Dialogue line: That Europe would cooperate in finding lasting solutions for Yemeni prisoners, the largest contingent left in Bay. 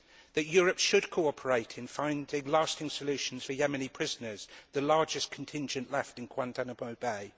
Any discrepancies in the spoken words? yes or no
yes